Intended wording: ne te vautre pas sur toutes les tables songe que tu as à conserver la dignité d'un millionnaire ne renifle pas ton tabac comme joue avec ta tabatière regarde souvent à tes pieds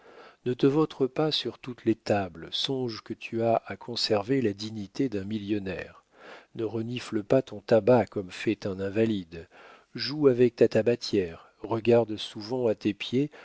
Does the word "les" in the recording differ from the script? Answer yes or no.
no